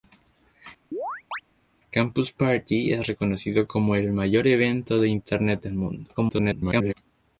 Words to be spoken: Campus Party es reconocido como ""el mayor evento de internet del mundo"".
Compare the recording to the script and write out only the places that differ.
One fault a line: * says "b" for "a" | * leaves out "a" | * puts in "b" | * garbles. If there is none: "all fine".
* garbles